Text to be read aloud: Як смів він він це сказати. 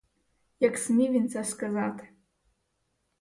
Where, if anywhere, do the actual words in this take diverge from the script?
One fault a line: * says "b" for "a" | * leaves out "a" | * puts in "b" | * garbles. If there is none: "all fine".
* leaves out "він"